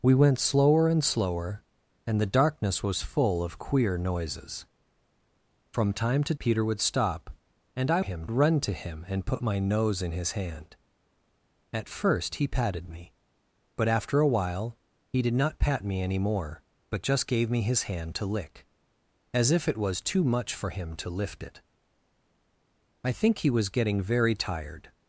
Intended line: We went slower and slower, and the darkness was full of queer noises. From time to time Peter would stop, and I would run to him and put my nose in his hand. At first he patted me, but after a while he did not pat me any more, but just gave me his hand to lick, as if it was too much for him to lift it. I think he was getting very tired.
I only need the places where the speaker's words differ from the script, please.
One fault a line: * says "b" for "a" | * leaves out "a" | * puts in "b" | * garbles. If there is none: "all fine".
* leaves out "time"
* says "him" for "would"